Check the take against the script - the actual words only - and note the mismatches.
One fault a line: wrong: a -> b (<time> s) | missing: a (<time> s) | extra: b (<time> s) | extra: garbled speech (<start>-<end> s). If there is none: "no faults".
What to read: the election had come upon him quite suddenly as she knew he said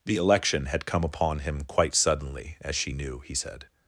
no faults